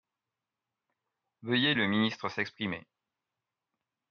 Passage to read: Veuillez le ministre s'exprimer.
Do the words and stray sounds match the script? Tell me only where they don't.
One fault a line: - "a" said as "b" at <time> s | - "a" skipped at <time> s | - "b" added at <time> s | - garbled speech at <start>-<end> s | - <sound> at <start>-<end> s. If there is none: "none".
none